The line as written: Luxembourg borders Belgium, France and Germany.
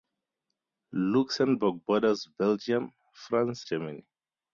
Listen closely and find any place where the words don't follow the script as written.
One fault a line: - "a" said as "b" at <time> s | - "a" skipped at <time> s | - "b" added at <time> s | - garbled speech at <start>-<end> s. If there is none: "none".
- "and" skipped at 3.7 s